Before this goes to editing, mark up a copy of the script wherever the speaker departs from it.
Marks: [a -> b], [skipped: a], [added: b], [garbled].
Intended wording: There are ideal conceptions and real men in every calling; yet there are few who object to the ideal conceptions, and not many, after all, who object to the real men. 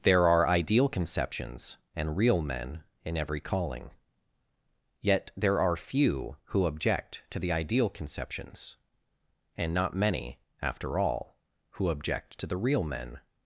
There are ideal conceptions and real men in every calling; yet there are few who object to the ideal conceptions, and not many, after all, who object to the real men.